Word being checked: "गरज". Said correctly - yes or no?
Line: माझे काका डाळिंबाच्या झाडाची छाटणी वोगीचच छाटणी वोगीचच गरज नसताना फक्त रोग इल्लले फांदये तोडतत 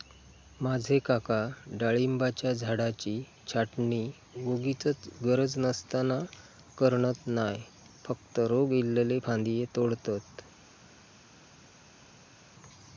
no